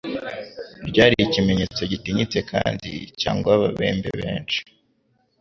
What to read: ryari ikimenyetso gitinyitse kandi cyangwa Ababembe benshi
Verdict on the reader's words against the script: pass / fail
pass